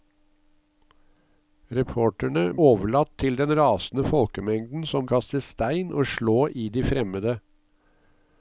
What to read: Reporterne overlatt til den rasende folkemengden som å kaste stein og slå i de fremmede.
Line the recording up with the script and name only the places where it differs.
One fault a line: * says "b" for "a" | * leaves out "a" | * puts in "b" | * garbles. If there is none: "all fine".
all fine